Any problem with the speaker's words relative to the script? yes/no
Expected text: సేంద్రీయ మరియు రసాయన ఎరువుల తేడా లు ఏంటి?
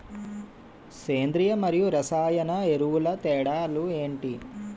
no